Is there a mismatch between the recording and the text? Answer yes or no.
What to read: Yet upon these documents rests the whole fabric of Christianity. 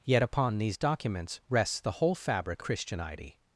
yes